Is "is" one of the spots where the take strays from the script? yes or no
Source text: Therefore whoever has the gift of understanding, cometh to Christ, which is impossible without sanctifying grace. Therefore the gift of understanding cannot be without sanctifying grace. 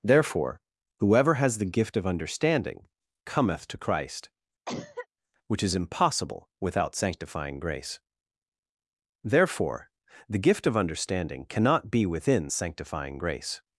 no